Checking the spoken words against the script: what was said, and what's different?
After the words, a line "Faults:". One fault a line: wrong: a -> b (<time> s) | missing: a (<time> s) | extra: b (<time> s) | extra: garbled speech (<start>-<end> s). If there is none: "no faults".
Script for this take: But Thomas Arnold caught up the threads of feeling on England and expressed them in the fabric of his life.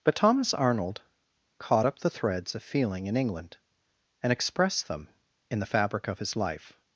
But Thomas Arnold caught up the threads of feeling in England and expressed them in the fabric of his life.
Faults:
wrong: on -> in (3.1 s)